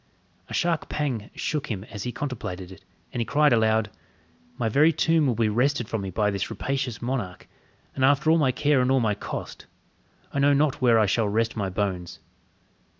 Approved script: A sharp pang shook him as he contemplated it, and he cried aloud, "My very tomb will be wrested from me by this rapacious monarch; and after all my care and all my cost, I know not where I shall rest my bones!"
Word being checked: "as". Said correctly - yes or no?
yes